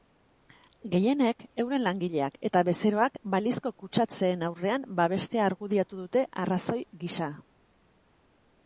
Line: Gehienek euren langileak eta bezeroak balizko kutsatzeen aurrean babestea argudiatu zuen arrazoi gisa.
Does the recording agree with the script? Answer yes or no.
no